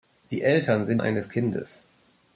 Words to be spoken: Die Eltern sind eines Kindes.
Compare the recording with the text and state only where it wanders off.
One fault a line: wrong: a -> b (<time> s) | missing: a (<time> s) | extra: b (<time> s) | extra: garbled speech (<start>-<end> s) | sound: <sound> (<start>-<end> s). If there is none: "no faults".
no faults